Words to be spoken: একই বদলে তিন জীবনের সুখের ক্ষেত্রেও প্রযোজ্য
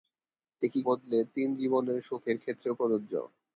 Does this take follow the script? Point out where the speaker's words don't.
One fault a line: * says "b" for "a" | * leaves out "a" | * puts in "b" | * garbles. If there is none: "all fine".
all fine